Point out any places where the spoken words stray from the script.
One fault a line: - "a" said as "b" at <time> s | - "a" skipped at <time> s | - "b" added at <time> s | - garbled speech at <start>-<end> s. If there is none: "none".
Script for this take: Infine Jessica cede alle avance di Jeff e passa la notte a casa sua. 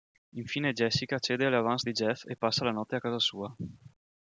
none